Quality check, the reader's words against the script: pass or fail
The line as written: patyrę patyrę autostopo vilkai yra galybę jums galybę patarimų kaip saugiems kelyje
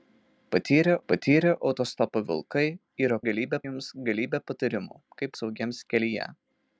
pass